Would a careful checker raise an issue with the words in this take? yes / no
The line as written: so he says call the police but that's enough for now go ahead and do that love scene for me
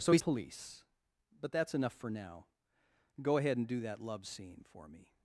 yes